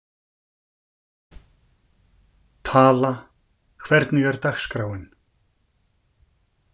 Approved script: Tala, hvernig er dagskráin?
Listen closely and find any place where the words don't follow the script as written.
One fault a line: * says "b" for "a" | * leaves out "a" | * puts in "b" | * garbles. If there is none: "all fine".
all fine